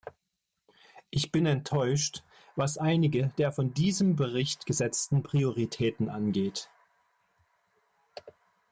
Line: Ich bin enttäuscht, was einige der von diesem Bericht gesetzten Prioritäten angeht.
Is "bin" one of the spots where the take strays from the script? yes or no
no